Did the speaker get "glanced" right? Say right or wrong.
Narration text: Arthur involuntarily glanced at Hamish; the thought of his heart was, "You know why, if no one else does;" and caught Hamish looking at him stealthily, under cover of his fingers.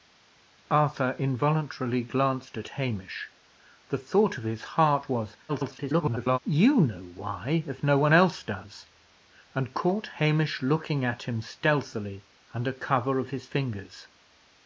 right